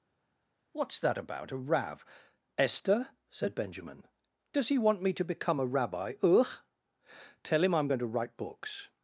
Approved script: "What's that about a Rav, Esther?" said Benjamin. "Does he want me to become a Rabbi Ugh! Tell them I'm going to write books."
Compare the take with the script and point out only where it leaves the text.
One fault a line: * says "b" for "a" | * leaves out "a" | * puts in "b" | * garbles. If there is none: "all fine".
* says "him" for "them"